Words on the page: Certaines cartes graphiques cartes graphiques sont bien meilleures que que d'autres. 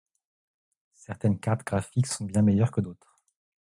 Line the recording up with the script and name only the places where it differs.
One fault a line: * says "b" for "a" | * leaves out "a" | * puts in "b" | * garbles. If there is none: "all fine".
* leaves out "cartes graphiques"
* leaves out "que"